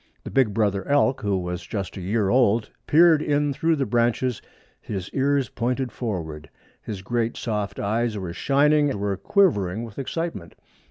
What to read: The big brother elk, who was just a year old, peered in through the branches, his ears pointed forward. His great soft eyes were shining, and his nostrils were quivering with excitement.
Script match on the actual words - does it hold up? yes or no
no